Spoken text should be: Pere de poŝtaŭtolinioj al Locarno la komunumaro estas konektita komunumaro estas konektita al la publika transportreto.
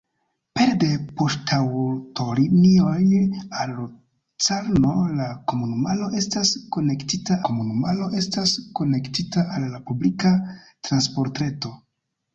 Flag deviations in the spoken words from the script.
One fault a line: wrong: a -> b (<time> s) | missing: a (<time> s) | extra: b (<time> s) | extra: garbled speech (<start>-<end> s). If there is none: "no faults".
no faults